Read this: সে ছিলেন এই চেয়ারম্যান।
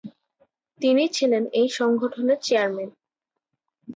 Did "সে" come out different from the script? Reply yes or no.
yes